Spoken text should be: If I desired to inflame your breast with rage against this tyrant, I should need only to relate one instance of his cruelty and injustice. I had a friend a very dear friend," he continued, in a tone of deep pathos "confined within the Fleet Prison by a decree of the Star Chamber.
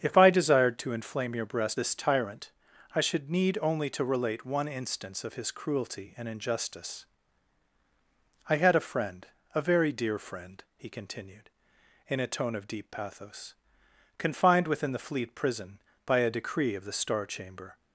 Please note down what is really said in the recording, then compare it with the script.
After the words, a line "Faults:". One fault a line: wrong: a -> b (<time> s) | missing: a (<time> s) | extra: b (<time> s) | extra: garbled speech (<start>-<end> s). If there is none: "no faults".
If I desired to inflame your breast this tyrant, I should need only to relate one instance of his cruelty and injustice. I had a friend a very dear friend," he continued, in a tone of deep pathos "confined within the Fleet Prison by a decree of the Star Chamber.
Faults:
missing: with rage against (1.8 s)